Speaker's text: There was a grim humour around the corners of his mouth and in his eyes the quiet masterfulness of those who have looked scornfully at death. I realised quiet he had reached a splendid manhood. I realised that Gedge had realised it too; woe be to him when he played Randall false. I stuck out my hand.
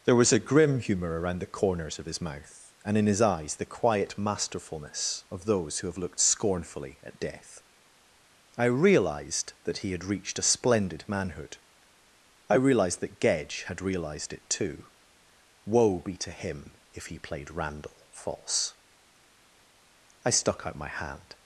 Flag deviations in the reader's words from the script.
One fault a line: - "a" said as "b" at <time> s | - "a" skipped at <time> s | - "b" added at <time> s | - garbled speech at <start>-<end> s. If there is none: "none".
- "quiet" said as "that" at 9.7 s
- "when" said as "if" at 16.9 s